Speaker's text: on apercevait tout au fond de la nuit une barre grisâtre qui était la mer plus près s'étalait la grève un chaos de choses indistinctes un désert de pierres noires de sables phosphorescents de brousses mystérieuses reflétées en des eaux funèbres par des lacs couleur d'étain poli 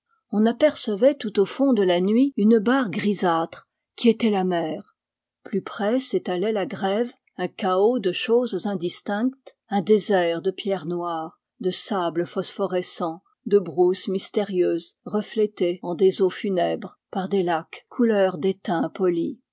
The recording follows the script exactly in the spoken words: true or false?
true